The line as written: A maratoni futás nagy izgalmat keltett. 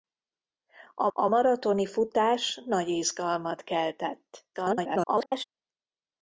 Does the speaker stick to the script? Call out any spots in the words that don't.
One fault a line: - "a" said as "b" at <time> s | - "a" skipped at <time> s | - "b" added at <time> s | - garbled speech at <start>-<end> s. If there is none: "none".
- "a" added at 1.1 s
- garbled speech at 4.5-5.4 s